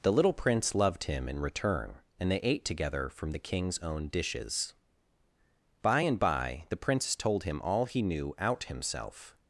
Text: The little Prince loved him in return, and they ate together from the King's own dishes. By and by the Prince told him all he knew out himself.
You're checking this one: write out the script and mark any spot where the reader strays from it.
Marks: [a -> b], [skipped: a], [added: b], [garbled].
The little Prince loved him in return, and they ate together from the King's own dishes. By and by the Prince told him all he knew out himself.